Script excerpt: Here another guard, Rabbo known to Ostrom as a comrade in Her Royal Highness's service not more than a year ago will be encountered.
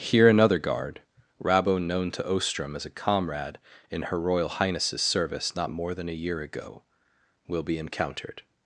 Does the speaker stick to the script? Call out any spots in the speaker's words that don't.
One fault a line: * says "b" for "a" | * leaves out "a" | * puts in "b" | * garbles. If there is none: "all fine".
all fine